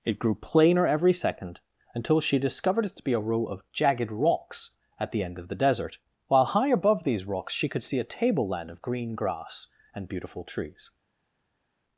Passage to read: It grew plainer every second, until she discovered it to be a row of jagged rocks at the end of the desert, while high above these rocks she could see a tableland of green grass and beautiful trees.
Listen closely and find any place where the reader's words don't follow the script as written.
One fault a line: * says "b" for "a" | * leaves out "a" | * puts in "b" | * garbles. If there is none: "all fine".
all fine